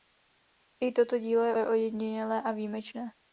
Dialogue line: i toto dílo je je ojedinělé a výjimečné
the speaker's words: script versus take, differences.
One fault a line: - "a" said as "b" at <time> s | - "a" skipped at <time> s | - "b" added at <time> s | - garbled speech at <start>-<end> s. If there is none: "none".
none